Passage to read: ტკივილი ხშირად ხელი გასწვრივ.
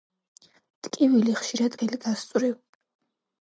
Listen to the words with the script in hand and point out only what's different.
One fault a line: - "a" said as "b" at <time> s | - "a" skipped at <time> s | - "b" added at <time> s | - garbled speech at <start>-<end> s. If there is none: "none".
none